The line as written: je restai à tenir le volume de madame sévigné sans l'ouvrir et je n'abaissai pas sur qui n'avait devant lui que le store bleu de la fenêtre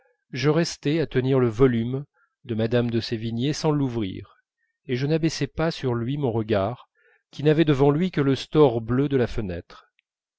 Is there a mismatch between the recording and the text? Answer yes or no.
yes